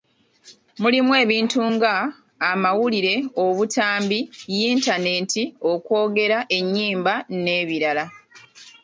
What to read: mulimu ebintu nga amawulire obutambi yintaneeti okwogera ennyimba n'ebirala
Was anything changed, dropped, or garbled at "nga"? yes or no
no